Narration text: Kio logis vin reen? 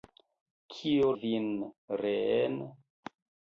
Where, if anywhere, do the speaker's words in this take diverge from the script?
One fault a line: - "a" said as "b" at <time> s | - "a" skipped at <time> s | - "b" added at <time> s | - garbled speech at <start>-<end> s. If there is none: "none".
- "logis" skipped at 1.1 s